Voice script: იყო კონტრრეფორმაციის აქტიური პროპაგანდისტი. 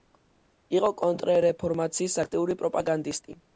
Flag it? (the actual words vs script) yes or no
no